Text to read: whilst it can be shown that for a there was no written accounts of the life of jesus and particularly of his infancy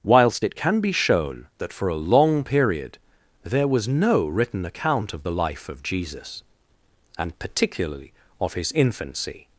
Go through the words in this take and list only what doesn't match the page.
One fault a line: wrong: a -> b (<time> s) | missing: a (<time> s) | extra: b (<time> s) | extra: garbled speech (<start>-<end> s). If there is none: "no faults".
extra: long period (2.0 s)
wrong: accounts -> account (4.7 s)